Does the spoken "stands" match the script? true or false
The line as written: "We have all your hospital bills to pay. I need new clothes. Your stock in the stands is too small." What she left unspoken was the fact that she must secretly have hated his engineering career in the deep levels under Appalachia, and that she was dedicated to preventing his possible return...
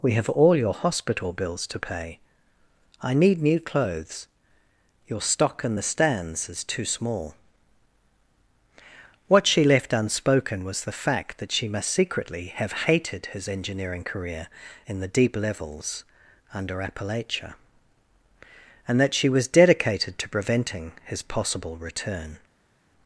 true